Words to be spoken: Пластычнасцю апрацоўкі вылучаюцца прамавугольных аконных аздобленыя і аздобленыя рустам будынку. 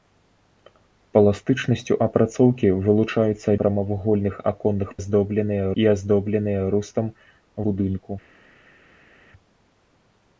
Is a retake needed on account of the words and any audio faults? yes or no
no